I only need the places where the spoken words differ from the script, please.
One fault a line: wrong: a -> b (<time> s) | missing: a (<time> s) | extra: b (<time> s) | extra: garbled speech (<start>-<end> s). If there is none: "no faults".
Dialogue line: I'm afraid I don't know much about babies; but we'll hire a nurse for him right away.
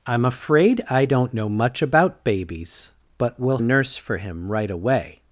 missing: hire (3.6 s)